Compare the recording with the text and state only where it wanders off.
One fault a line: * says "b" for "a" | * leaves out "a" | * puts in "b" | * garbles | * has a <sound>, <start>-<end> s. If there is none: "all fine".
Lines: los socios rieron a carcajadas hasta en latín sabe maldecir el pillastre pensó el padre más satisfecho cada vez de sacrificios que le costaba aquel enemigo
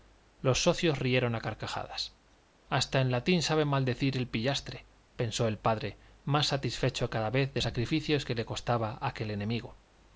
all fine